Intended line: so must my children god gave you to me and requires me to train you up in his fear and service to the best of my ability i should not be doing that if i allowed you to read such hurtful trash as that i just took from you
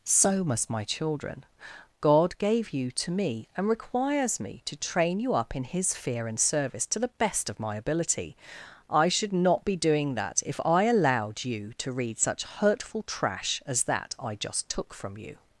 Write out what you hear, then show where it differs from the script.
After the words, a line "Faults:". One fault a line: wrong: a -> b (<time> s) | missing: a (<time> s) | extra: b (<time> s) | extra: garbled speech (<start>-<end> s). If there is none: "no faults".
so must my children god gave you to me and requires me to train you up in his fear and service to the best of my ability i should not be doing that if i allowed you to read such hurtful trash as that i just took from you
Faults:
no faults